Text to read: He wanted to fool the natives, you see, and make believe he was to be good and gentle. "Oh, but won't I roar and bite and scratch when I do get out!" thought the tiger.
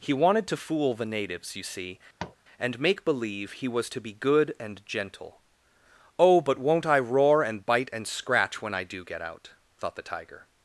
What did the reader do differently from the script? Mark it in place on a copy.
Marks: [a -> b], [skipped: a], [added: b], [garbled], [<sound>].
He wanted to fool the natives, you see, [tap] and make believe he was to be good and gentle. "Oh, but won't I roar and bite and scratch when I do get out!" thought the tiger.